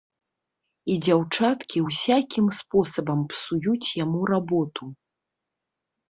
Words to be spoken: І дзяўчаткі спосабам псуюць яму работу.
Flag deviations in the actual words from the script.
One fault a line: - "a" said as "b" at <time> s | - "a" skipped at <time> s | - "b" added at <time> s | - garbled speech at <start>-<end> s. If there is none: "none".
- "ўсякім" added at 1.9 s